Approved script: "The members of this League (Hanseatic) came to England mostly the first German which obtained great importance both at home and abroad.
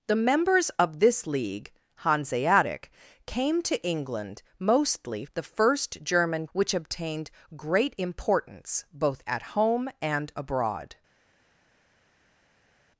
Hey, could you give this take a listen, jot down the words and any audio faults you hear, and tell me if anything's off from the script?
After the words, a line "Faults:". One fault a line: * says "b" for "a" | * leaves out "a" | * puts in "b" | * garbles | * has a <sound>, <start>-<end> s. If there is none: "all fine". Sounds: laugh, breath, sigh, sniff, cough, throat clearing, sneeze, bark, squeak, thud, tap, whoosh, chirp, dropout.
"The members of this League (Hanseatic) came to England mostly the first German which obtained great importance both at home and abroad.
Faults:
all fine